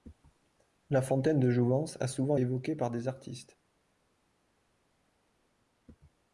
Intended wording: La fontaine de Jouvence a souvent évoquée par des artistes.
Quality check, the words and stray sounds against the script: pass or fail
pass